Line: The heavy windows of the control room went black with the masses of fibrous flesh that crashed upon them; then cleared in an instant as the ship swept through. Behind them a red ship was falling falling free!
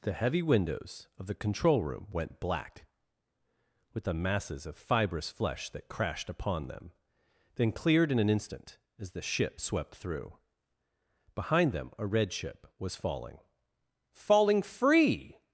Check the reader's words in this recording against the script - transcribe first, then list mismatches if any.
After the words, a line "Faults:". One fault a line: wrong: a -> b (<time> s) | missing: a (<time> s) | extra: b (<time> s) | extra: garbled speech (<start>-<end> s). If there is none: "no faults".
The heavy windows of the control room went black with the masses of fibrous flesh that crashed upon them; then cleared in an instant as the ship swept through. Behind them a red ship was falling falling free!
Faults:
no faults